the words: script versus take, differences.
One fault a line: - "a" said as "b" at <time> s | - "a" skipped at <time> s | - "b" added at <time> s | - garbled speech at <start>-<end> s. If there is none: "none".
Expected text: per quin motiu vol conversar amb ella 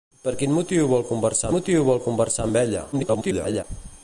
- "motiu vol conversar" added at 1.5 s
- garbled speech at 2.9-3.6 s